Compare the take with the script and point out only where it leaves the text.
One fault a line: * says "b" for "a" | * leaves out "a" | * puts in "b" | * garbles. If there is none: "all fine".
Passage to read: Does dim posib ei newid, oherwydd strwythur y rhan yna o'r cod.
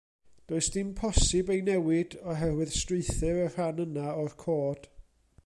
all fine